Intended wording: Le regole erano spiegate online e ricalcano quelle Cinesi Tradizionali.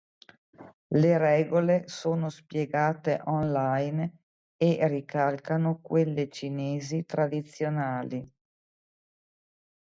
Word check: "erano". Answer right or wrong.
wrong